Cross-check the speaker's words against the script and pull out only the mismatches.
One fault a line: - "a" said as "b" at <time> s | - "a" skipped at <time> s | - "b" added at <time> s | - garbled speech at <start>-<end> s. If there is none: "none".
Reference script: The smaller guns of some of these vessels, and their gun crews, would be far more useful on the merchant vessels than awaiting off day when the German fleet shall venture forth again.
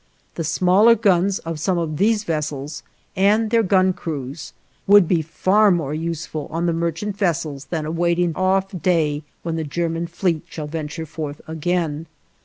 none